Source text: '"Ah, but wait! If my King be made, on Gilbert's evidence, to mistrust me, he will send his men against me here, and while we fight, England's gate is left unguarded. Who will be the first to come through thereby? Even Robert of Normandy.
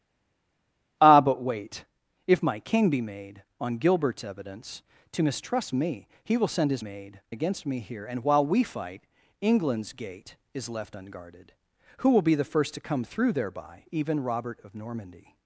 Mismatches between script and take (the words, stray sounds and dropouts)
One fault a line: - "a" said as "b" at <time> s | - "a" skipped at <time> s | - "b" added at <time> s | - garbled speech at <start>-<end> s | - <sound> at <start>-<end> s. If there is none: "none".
- "men" said as "made" at 6.8 s